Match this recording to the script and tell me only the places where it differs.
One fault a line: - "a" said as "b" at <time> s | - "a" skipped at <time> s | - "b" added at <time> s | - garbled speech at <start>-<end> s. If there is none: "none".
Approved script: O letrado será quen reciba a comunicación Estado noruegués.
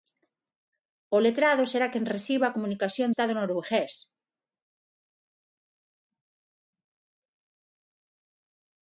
none